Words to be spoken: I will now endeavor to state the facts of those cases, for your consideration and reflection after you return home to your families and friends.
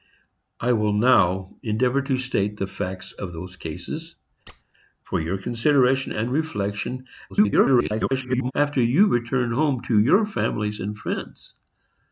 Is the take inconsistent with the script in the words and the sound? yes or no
yes